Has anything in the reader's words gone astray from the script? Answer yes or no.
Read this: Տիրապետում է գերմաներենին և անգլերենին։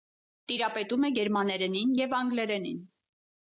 no